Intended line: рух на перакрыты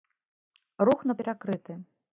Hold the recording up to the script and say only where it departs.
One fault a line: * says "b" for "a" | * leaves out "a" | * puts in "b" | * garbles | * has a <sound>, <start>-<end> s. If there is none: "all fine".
all fine